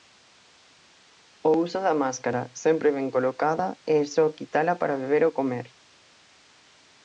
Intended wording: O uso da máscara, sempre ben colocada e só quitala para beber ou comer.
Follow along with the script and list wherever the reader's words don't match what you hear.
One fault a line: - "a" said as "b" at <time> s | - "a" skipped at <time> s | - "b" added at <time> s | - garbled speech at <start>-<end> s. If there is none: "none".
none